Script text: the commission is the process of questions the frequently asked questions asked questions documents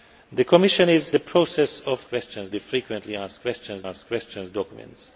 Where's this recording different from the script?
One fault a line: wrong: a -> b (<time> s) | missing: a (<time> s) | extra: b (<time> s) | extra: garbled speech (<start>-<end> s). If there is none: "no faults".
no faults